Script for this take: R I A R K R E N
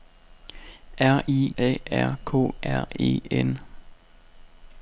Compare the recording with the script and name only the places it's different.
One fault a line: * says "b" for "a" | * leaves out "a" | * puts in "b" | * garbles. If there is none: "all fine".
all fine